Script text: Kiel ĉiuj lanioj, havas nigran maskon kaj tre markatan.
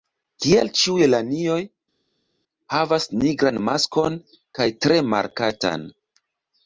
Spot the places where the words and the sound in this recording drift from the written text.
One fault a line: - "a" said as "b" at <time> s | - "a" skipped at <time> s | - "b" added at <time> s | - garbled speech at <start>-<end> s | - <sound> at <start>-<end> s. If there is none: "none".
none